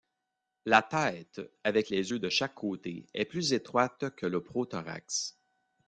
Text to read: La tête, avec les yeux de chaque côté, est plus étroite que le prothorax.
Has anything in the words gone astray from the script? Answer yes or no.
no